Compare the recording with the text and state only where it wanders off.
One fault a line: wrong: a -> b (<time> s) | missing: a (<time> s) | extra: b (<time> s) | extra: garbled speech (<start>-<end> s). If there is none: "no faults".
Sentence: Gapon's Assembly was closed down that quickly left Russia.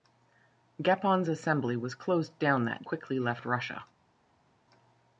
no faults